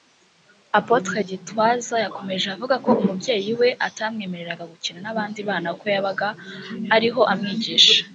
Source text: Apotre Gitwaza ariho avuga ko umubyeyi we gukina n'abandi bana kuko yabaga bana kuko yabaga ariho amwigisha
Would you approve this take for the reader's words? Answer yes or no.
no